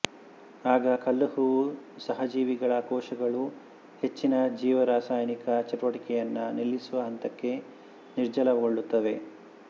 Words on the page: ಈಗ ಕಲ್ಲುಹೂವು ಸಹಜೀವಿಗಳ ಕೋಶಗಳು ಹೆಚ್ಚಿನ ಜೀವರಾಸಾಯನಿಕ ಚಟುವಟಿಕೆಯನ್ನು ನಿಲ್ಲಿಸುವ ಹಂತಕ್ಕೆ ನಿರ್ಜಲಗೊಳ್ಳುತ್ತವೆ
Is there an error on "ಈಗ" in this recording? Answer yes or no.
yes